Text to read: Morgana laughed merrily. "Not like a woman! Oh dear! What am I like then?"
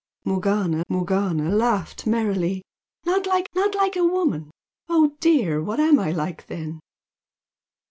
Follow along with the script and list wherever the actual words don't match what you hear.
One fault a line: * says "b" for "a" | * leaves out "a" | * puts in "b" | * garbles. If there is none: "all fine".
* puts in "morgana"
* puts in "not like"